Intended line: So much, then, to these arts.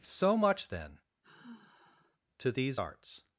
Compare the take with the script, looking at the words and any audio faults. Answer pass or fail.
fail